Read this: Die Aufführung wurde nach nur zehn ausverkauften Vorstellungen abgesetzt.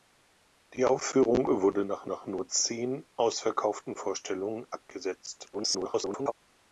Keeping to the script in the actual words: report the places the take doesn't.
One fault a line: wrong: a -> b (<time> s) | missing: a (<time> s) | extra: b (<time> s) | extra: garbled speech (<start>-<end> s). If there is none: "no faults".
extra: nach (2.0 s)
extra: garbled speech (5.5-6.3 s)